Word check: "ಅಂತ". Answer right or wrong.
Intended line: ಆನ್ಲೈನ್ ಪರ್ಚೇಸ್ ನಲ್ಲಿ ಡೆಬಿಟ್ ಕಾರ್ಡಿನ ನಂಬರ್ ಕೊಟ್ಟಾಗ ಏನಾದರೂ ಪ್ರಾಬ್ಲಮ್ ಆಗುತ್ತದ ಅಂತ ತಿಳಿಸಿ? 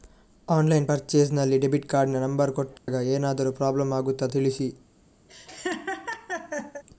wrong